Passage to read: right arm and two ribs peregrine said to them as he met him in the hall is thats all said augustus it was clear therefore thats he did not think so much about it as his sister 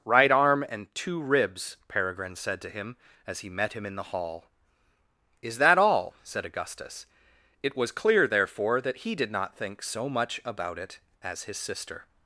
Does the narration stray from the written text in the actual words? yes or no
yes